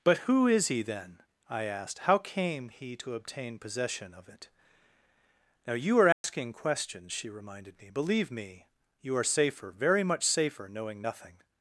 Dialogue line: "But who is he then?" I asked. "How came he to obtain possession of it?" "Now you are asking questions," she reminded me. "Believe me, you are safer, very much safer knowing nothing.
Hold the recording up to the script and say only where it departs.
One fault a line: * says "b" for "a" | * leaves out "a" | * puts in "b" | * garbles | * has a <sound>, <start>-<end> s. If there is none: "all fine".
* has a dropout, 6.1-6.2 s